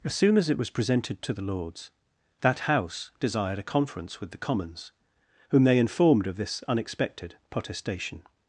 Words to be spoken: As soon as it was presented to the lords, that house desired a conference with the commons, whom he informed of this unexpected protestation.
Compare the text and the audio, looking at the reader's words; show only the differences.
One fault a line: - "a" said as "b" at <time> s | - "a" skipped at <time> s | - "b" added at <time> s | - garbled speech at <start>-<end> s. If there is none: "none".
- "he" said as "they" at 5.6 s